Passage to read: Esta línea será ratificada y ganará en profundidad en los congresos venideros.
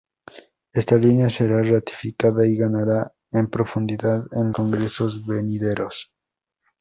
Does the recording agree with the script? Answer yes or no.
no